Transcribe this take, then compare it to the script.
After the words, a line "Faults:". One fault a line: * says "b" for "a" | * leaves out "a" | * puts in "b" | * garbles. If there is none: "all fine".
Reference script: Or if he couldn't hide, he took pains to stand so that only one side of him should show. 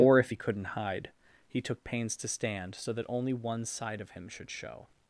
Or if he couldn't hide, he took pains to stand so that only one side of him should show.
Faults:
all fine